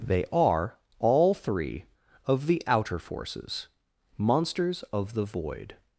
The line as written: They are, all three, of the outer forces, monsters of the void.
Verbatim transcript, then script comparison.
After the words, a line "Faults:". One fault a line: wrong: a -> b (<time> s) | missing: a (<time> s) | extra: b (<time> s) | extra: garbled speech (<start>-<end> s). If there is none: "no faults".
They are, all three, of the outer forces, monsters of the void.
Faults:
no faults